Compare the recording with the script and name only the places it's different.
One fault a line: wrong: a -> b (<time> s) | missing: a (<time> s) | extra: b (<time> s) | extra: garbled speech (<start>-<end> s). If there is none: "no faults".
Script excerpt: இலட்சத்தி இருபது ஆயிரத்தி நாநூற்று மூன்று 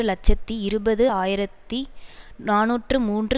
no faults